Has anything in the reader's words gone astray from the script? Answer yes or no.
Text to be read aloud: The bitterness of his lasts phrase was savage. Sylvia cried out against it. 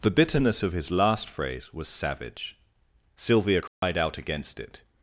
yes